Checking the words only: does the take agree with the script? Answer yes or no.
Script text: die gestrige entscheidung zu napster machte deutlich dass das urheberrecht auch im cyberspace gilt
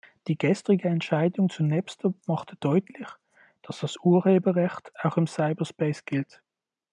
yes